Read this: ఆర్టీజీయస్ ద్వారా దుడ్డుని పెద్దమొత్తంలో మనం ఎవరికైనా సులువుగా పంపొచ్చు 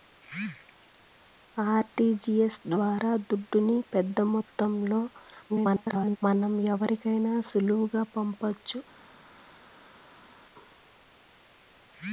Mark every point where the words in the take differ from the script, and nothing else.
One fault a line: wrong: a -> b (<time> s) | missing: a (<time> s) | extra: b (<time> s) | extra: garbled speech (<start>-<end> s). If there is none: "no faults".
extra: garbled speech (5.5-6.2 s)